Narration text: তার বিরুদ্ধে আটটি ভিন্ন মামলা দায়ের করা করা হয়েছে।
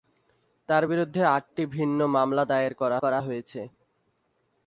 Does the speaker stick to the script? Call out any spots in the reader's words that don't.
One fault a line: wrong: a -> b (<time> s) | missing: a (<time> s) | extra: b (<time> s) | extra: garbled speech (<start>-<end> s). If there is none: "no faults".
no faults